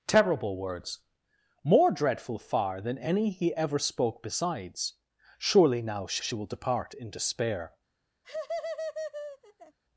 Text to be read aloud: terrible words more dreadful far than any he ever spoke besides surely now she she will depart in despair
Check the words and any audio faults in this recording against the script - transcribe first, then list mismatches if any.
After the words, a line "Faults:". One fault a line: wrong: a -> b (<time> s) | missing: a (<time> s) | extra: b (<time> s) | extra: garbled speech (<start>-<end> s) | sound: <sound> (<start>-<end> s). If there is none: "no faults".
terrible words more dreadful far than any he ever spoke besides surely now she she will depart in despair
Faults:
sound: laugh (8.2-9.8 s)